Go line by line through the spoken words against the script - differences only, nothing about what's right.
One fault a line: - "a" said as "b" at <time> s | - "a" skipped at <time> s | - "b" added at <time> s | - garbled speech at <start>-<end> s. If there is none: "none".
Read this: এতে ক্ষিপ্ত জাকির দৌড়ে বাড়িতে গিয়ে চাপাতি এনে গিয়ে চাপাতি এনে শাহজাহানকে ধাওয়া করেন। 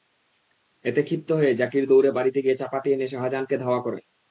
- "হয়ে" added at 1.3 s
- "গিয়ে চাপাতি এনে" skipped at 3.1 s